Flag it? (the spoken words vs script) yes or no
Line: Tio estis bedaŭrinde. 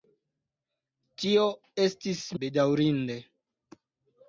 no